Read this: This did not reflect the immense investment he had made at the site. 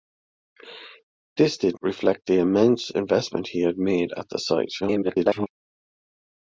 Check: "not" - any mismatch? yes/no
yes